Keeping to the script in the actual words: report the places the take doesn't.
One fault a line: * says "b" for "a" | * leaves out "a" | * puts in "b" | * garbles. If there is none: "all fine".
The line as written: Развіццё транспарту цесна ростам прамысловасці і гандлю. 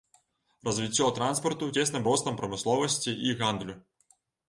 all fine